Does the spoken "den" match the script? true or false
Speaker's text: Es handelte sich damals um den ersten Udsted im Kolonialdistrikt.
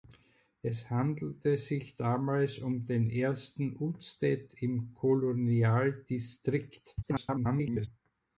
true